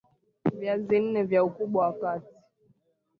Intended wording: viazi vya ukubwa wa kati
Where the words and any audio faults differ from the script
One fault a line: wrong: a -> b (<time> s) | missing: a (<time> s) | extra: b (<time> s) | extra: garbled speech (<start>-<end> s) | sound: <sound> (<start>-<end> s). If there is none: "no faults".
extra: nne (1.0 s)